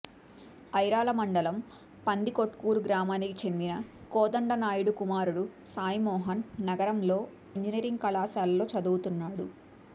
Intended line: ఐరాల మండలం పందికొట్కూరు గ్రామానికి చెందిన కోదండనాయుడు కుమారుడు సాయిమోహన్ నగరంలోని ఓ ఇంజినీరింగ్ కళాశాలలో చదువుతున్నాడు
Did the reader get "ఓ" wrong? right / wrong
wrong